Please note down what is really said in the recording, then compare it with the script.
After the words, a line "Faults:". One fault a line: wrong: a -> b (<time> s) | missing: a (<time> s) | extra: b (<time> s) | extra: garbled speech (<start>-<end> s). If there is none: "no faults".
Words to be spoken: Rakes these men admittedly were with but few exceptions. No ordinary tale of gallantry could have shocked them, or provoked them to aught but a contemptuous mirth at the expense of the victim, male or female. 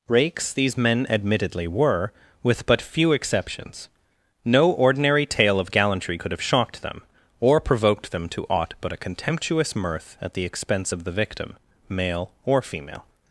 Rakes these men admittedly were with but few exceptions. No ordinary tale of gallantry could have shocked them, or provoked them to aught but a contemptuous mirth at the expense of the victim, male or female.
Faults:
no faults